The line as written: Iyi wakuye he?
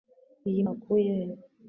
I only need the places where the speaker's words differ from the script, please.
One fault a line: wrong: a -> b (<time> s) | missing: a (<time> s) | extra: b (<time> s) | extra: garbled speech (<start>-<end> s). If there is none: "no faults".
no faults